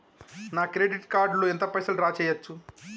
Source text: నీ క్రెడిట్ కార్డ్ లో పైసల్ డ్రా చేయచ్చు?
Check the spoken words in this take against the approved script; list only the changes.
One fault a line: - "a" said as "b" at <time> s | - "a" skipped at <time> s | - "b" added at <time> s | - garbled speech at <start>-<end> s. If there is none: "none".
- "నీ" said as "నా" at 0.5 s
- "ఎంత" added at 1.5 s